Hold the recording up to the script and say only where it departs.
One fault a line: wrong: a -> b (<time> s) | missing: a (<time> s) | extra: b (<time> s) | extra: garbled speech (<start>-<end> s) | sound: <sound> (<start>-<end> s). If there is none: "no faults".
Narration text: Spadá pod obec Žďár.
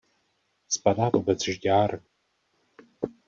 missing: pod (1.1 s)